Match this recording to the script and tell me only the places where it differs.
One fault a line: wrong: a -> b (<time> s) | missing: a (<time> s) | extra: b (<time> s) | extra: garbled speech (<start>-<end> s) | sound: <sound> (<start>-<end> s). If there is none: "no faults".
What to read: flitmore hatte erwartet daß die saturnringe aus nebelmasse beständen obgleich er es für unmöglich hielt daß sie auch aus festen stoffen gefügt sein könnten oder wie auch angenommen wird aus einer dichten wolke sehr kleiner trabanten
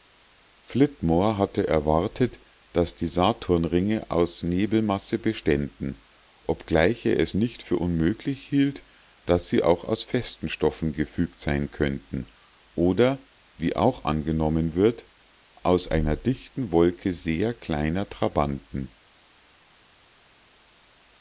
extra: nicht (7.3 s)